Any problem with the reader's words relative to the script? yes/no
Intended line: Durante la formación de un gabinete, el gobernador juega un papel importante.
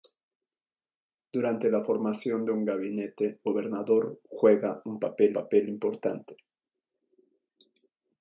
yes